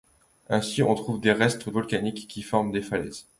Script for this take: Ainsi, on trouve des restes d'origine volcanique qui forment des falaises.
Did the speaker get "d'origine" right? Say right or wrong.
wrong